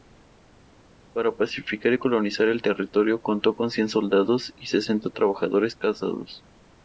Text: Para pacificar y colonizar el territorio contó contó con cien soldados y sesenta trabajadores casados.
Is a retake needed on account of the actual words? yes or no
yes